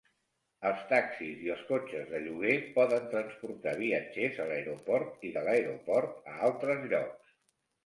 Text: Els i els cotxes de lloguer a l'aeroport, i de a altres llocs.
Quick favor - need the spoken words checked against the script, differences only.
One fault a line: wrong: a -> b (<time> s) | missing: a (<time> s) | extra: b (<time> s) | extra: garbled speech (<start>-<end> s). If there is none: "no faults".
extra: taxis (0.9 s)
extra: poden transportar viatgers (2.8 s)
extra: l'aeroport (5.5 s)